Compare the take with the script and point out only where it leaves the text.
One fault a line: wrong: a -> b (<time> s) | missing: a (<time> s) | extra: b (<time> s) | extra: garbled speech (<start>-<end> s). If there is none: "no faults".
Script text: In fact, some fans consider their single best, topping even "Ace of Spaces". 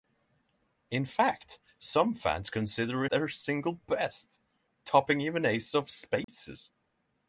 no faults